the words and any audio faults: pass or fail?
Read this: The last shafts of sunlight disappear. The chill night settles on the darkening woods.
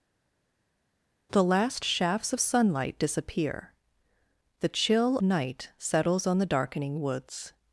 pass